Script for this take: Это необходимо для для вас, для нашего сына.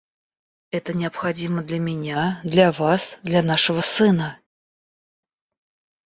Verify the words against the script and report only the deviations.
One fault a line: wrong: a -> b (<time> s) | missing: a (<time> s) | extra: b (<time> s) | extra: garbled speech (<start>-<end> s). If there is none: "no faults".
extra: меня (1.8 s)